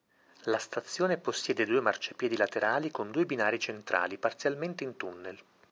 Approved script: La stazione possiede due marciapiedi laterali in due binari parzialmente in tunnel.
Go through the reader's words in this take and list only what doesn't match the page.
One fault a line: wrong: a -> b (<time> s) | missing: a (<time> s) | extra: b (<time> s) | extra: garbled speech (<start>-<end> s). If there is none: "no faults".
wrong: in -> con (2.9 s)
extra: centrali (3.6 s)